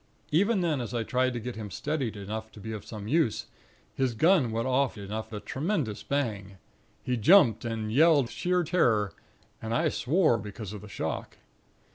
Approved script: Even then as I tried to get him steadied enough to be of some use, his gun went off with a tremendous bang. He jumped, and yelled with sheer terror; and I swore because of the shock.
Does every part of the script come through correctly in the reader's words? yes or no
no